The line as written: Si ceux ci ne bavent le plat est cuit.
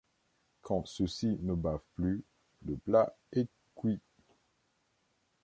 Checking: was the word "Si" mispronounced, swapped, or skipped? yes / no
yes